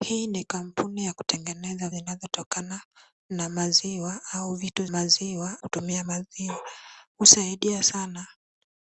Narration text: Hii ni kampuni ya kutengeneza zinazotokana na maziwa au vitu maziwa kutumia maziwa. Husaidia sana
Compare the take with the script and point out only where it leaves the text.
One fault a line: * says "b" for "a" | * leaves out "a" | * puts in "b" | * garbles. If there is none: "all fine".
all fine